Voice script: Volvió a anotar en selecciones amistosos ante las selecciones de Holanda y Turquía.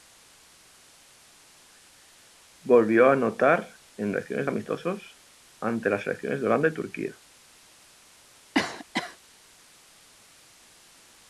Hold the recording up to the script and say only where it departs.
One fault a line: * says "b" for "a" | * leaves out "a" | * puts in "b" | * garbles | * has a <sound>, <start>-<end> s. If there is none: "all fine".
* has a cough, 8.5-9.2 s